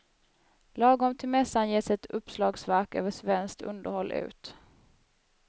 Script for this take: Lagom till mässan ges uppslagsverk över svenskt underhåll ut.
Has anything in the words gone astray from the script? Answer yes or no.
yes